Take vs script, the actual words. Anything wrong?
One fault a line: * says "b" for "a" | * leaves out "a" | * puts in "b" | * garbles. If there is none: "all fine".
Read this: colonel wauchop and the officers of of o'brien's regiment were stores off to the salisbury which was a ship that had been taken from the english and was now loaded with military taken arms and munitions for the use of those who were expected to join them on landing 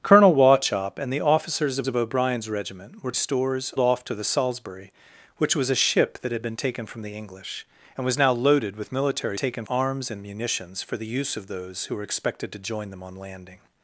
all fine